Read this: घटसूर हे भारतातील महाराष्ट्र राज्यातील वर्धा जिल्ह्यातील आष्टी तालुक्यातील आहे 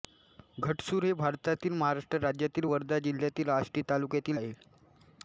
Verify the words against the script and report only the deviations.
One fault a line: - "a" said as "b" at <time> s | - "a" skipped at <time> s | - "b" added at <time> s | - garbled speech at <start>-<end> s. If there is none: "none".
none